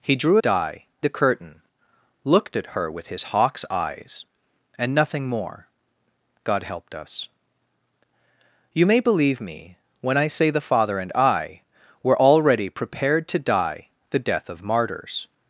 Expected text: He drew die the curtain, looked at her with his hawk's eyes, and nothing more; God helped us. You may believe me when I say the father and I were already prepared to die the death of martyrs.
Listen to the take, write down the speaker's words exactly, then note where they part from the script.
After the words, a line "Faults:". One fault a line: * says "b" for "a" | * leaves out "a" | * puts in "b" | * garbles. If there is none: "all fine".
He drew die the curtain, looked at her with his hawk's eyes, and nothing more; God helped us. You may believe me when I say the father and I were already prepared to die the death of martyrs.
Faults:
all fine